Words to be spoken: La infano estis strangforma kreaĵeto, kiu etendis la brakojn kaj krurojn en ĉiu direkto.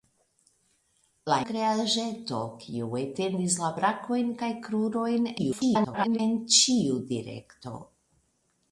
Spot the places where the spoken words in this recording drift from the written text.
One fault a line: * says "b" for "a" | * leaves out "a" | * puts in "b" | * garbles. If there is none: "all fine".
* leaves out "infano estis strangforma"
* garbles